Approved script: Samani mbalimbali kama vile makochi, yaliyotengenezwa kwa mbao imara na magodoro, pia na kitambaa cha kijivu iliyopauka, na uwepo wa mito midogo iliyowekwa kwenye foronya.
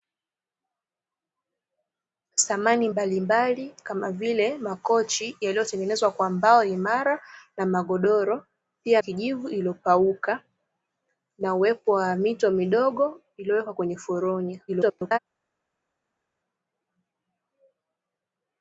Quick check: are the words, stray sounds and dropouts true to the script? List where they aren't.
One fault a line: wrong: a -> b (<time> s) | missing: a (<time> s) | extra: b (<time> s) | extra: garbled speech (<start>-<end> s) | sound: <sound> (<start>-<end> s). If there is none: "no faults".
missing: na kitambaa cha (9.0 s)
extra: garbled speech (14.7-15.2 s)